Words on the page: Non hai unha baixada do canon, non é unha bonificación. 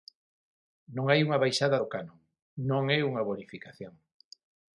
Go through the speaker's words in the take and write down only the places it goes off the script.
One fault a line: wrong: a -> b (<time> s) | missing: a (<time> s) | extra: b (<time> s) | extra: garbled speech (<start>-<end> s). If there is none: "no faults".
no faults